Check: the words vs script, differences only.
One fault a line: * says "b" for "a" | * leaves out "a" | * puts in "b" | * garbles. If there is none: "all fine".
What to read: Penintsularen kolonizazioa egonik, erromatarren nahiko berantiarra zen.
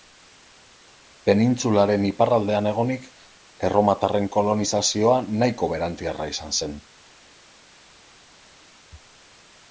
* says "iparraldean" for "kolonizazioa"
* puts in "kolonizazioa"
* puts in "izan"